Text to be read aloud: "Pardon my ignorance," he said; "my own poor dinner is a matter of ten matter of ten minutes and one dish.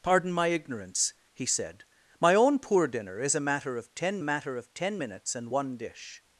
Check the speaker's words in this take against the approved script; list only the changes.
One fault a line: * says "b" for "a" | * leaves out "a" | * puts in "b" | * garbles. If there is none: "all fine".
all fine